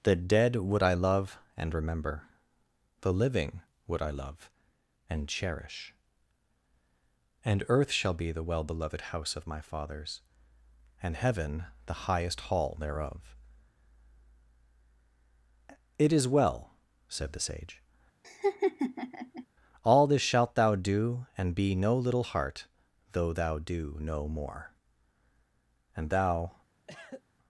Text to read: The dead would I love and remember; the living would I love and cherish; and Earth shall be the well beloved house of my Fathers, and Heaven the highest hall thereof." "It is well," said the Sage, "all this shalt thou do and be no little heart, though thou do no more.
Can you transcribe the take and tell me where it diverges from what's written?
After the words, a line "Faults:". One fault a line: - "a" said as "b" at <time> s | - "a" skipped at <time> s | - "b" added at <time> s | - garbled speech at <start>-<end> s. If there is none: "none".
The dead would I love and remember; the living would I love and cherish; and Earth shall be the well beloved house of my Fathers, and Heaven the highest hall thereof." "It is well," said the Sage, "all this shalt thou do and be no little heart, though thou do no more. And thou
Faults:
- "And thou" added at 26.0 s